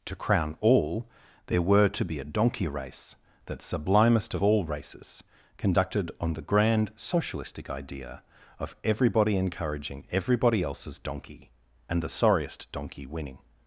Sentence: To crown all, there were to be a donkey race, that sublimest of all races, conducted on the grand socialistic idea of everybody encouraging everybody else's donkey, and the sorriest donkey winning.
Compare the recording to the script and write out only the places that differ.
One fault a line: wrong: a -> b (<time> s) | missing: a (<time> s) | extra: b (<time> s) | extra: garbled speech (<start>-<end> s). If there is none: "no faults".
no faults